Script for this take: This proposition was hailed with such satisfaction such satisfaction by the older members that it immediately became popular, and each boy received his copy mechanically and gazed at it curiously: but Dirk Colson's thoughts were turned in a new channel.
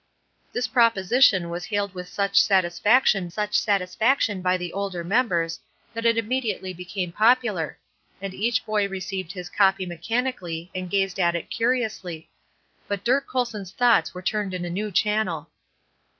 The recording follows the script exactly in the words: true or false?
true